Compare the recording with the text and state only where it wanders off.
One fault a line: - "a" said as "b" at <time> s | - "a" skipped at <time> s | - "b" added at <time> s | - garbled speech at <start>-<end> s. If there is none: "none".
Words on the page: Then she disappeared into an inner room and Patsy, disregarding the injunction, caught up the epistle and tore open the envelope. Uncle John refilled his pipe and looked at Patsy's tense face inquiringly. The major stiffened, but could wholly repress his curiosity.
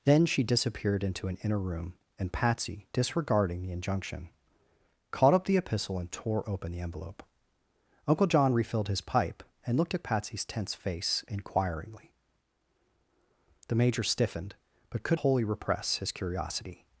none